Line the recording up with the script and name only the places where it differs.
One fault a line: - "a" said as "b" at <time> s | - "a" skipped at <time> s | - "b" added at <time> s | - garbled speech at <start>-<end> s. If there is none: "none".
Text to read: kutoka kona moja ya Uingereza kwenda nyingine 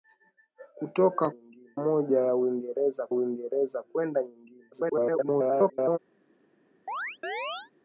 - "kona" said as "nyingine" at 1.3 s
- "Uingereza" added at 3.1 s
- garbled speech at 4.7-6.0 s